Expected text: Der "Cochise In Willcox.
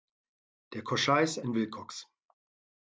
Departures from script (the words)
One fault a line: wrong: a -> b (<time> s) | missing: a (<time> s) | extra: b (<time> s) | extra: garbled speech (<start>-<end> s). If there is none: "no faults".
no faults